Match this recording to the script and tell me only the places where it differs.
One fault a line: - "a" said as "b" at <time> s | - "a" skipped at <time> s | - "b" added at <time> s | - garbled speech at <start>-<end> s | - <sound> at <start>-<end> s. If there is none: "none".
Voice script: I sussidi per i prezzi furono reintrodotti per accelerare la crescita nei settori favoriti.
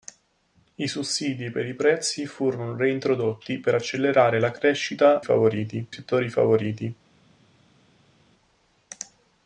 - "nei" said as "favoriti" at 5.2 s